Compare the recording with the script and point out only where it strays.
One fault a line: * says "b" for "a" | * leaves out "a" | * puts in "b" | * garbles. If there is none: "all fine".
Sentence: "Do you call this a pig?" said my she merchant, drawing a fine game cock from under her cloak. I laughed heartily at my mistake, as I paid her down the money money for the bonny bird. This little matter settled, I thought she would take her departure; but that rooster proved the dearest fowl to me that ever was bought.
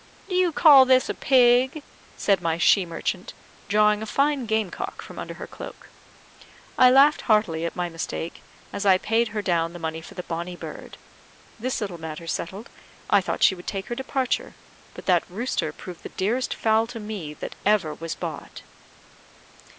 * leaves out "money"